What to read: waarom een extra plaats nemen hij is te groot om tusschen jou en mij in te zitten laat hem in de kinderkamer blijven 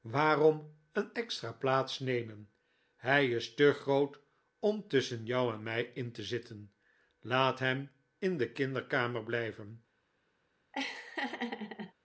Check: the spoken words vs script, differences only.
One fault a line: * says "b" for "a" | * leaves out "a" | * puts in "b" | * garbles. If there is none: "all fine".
all fine